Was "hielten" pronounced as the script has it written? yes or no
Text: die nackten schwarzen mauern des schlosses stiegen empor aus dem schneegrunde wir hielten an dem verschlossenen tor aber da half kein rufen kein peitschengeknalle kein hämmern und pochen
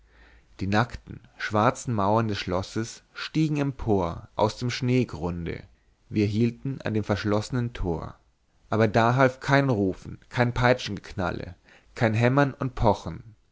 yes